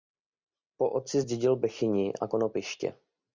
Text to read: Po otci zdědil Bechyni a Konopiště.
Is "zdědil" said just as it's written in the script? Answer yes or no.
yes